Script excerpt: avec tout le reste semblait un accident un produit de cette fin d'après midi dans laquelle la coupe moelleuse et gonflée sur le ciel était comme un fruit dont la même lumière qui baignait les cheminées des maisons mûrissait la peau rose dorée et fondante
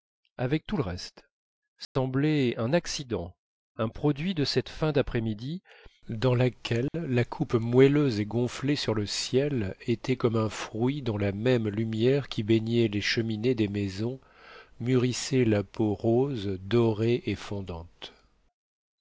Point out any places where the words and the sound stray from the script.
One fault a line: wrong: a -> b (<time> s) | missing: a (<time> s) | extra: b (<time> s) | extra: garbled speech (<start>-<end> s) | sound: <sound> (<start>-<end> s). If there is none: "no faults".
sound: dropout (1.8-2.0 s)
sound: dropout (6.9-6.9 s)